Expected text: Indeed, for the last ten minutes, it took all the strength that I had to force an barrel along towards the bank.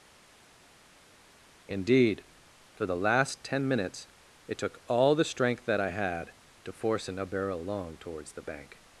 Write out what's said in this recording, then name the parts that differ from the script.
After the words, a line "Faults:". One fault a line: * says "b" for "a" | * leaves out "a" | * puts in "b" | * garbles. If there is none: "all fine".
Indeed, for the last ten minutes, it took all the strength that I had to force an barrel along towards the bank.
Faults:
all fine